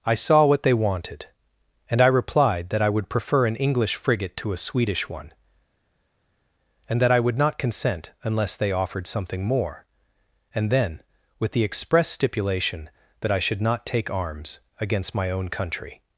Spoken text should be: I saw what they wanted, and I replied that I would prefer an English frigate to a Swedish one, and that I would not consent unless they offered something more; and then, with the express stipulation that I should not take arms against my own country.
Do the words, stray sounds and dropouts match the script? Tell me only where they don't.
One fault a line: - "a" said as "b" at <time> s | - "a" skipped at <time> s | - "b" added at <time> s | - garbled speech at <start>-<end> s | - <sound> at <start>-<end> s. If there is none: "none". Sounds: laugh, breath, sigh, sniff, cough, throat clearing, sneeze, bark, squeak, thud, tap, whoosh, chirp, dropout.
none